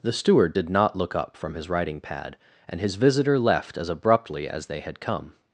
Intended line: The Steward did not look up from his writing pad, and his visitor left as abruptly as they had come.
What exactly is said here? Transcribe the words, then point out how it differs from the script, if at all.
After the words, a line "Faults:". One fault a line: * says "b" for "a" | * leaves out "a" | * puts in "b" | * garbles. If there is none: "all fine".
The Steward did not look up from his writing pad, and his visitor left as abruptly as they had come.
Faults:
all fine